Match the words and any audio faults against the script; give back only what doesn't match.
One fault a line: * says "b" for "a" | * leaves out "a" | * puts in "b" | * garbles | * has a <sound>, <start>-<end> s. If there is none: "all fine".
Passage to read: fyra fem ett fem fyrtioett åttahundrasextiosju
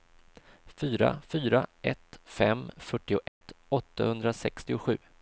* says "fyra" for "fem"
* has a dropout, 3.3-3.4 s